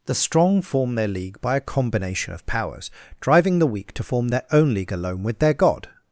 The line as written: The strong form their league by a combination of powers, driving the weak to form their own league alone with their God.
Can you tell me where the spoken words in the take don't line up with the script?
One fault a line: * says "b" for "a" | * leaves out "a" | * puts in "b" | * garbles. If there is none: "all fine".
all fine